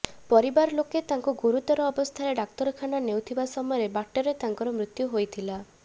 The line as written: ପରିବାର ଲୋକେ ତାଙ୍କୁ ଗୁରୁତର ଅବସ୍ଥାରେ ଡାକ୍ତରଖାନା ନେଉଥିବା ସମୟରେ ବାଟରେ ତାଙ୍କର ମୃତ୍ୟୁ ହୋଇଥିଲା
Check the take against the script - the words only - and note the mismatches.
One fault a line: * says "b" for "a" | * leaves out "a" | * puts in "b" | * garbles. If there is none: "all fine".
all fine